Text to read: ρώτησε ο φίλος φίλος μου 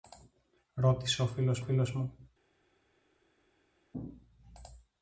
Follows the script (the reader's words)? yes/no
yes